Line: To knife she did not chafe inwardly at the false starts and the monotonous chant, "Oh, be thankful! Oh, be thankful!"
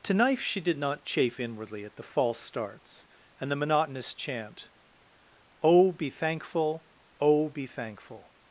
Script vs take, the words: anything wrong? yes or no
no